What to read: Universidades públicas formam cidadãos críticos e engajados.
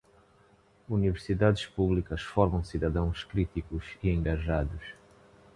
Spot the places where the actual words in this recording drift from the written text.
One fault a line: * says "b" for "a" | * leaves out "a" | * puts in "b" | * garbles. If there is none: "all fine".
all fine